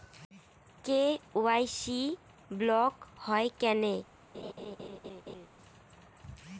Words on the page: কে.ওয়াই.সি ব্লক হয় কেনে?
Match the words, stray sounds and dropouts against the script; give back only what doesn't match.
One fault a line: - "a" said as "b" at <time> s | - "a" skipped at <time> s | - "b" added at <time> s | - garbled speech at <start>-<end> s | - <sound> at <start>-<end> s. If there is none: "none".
- laugh at 4.3-5.5 s